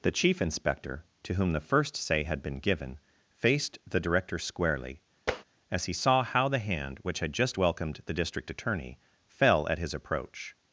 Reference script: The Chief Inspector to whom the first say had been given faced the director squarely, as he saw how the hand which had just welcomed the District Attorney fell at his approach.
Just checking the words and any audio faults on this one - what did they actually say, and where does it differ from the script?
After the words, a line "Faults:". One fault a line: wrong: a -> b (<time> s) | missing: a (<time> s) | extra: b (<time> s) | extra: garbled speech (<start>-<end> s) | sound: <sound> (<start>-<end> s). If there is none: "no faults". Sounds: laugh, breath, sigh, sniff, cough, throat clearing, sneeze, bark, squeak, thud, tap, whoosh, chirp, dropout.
The Chief Inspector to whom the first say had been given faced the director squarely, as he saw how the hand which had just welcomed the District Attorney fell at his approach.
Faults:
sound: tap (5.3-5.4 s)